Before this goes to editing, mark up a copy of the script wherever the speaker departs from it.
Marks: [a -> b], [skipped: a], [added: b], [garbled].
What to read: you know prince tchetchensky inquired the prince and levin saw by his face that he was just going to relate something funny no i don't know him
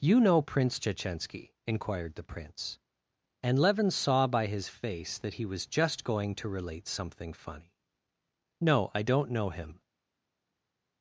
you know prince tchetchensky inquired the prince and levin saw by his face that he was just going to relate something funny no i don't know him